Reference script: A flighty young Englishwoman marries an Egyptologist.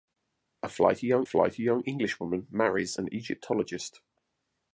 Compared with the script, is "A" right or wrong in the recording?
right